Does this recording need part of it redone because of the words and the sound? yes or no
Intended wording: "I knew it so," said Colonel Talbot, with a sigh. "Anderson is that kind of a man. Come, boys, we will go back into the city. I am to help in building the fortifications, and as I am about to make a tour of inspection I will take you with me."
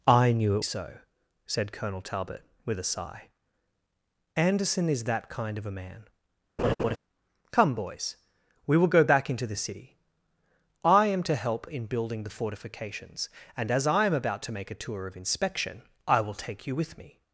yes